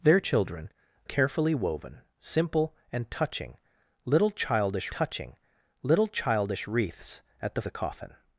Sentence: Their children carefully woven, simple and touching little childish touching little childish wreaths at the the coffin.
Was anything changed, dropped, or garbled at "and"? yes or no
no